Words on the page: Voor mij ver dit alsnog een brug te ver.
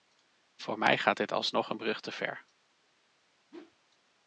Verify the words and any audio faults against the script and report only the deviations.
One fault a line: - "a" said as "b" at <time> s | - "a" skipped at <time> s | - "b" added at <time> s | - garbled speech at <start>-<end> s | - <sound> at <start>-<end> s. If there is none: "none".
- "ver" said as "gaat" at 1.0 s
- whoosh at 3.5-3.8 s